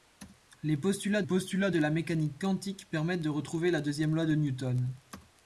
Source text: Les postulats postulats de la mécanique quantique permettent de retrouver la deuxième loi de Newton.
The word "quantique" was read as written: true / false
true